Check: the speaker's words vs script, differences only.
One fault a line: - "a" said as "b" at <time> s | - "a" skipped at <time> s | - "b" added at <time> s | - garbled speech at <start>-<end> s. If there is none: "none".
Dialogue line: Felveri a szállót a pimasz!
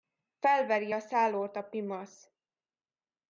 none